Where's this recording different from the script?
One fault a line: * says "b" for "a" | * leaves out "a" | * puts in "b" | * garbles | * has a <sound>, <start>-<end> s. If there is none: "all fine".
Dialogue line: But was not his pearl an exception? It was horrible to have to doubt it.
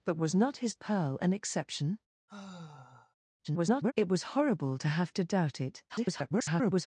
* has a sigh, 2.3-3.1 s
* garbles
* garbles